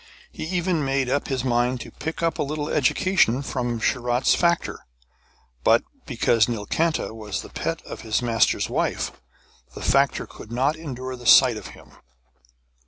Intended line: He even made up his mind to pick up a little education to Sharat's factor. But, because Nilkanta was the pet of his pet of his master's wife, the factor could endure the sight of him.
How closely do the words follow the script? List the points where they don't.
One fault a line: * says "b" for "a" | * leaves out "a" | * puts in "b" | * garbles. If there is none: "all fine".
* says "from" for "to"
* leaves out "pet of his"
* puts in "not"